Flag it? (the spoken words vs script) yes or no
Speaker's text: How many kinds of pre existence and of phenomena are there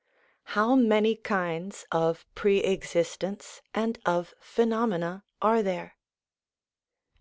no